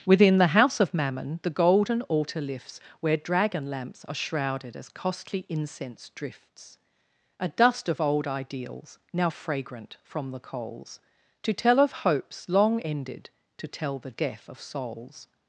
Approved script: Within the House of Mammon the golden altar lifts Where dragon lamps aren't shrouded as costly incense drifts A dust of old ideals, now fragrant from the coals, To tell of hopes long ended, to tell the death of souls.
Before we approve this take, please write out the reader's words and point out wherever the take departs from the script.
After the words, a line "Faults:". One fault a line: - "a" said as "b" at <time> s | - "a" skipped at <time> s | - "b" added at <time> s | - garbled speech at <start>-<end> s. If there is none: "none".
Within the House of Mammon the golden altar lifts Where dragon lamps are shrouded as costly incense drifts A dust of old ideals, now fragrant from the coals, To tell of hopes long ended, to tell the death of souls.
Faults:
- "aren't" said as "are" at 4.0 s